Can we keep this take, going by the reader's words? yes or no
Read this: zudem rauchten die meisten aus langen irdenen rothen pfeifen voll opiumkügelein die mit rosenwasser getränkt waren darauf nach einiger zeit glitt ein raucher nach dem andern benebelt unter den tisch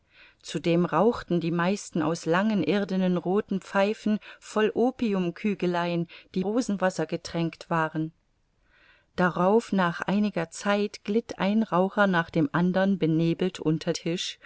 no